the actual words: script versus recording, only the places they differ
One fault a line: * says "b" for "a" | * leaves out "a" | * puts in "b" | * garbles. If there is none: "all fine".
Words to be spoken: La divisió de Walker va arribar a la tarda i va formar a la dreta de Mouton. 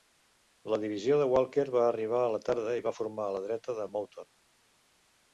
all fine